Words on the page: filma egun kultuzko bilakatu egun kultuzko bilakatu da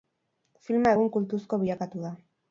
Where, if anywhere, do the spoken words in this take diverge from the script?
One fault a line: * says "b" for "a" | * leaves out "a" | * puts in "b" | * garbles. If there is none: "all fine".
* leaves out "egun kultuzko bilakatu"